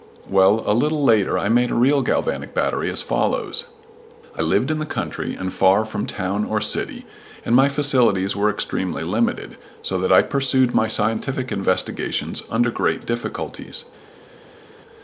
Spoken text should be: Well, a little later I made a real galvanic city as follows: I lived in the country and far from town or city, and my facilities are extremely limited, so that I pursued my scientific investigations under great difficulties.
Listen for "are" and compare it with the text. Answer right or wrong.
wrong